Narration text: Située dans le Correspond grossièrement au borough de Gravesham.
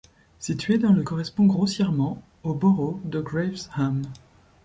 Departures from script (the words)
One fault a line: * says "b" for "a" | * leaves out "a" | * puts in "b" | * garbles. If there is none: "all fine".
all fine